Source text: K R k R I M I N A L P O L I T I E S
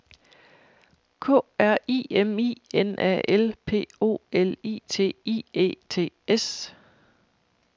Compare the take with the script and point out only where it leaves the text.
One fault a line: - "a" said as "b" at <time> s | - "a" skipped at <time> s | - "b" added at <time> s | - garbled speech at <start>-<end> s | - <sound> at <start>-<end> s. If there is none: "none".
- "k R" skipped at 1.8 s
- "T" added at 5.9 s